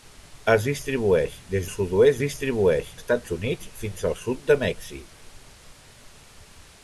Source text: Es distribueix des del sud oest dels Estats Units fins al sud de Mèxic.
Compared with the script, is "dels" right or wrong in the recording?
wrong